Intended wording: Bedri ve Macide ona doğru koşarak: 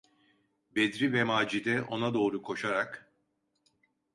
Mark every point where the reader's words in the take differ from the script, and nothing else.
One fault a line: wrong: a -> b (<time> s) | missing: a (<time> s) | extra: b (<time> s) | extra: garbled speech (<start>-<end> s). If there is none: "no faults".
no faults